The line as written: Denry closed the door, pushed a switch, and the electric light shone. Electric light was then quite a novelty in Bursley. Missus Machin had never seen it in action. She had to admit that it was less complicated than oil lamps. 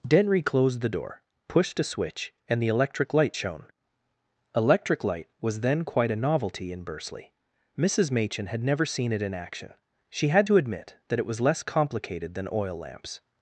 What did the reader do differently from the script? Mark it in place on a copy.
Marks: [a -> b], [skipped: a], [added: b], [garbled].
Denry closed the door, pushed a switch, and the electric light shone. Electric light was then quite a novelty in Bursley. Missus Machin had never seen it in action. She had to admit that it was less complicated than oil lamps.